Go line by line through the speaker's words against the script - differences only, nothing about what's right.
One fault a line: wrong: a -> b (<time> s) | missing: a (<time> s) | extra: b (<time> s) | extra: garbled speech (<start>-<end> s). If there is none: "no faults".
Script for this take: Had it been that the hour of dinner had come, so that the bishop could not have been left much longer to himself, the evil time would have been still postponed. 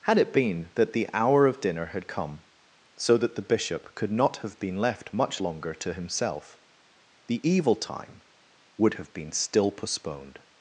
no faults